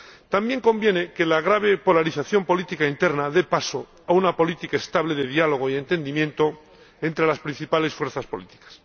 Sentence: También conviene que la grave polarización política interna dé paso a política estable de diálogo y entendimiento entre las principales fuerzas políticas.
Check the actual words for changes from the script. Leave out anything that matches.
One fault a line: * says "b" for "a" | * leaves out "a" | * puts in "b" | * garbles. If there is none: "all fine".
* puts in "una"